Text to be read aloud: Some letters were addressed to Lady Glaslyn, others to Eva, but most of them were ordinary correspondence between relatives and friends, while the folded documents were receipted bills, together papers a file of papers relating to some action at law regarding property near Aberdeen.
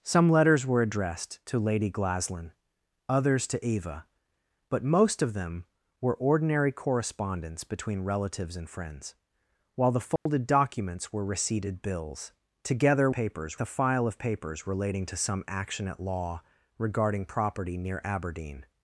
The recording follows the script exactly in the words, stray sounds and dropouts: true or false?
false